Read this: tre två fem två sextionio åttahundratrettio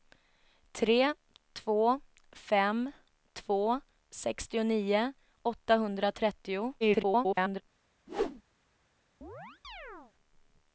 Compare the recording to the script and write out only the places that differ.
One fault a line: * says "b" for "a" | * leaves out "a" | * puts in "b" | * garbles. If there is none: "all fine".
* garbles